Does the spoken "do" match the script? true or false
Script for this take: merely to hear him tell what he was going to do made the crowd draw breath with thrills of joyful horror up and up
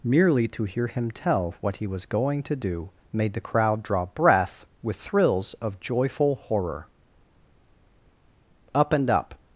true